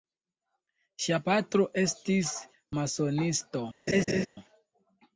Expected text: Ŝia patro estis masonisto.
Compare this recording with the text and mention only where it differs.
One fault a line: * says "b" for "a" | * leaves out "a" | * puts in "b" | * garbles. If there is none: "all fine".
all fine